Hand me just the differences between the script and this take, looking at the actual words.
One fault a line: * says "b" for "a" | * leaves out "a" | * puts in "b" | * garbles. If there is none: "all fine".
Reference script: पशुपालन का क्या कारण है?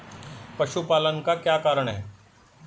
all fine